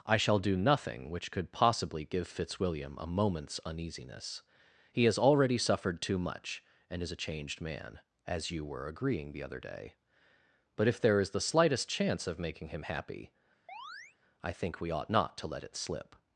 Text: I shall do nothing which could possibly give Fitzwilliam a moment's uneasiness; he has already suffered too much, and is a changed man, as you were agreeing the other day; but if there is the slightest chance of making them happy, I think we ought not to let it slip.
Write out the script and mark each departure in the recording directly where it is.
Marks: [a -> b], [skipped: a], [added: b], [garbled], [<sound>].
I shall do nothing which could possibly give Fitzwilliam a moment's uneasiness; he has already suffered too much, and is a changed man, as you were agreeing the other day; but if there is the slightest chance of making [them -> him] happy, [chirp] I think we ought not to let it slip.